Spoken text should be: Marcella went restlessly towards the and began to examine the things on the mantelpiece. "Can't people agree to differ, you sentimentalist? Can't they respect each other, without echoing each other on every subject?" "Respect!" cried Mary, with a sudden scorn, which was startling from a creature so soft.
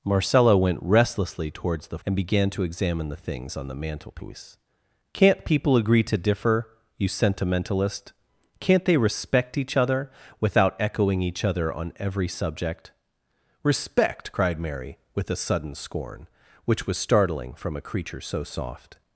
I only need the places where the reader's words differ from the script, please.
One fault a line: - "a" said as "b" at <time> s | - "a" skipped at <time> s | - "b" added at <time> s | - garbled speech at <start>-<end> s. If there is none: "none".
none